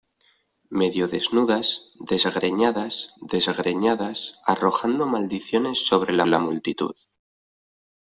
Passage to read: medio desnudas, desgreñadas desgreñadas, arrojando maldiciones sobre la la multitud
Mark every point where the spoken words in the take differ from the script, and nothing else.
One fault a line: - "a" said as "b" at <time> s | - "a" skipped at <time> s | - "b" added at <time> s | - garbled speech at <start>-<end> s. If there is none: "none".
none